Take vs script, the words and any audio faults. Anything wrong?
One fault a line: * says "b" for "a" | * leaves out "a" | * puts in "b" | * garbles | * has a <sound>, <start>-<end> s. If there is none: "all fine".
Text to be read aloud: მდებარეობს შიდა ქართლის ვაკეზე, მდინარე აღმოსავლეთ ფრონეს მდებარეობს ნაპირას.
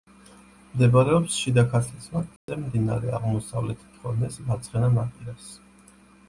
* has a dropout, 2.4-2.5 s
* says "მარცხენა" for "მდებარეობს"